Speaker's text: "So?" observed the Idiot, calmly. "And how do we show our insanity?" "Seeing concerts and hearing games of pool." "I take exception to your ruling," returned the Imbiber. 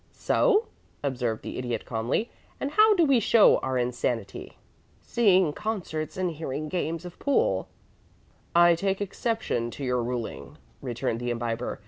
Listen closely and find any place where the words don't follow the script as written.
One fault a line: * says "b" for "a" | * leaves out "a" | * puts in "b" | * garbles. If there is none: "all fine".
all fine